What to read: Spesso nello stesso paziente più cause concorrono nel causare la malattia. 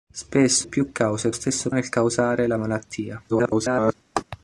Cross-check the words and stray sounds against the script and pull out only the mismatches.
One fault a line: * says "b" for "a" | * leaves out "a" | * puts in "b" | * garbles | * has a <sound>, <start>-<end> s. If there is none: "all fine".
* leaves out "nello stesso paziente"
* says "stesso" for "concorrono"
* garbles
* has a laugh, 4.2-4.2 s